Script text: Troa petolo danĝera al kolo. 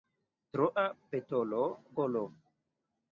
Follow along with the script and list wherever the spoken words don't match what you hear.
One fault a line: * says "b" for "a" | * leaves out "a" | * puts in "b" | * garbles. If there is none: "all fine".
* leaves out "danĝera al"